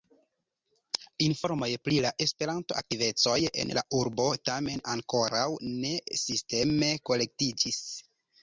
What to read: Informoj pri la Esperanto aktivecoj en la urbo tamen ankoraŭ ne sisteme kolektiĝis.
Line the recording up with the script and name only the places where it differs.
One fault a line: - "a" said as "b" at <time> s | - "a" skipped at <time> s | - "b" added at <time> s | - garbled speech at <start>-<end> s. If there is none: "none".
none